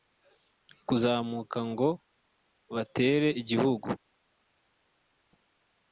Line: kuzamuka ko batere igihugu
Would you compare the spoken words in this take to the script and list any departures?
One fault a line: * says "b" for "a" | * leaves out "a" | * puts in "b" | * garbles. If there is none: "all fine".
* says "ngo" for "ko"